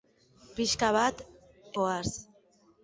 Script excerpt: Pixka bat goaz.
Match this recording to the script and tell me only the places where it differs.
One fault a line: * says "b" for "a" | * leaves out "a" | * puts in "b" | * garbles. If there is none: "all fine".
all fine